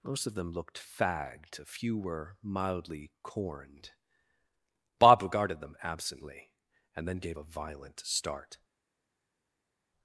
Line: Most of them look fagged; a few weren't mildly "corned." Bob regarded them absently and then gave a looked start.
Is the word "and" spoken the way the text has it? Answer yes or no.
yes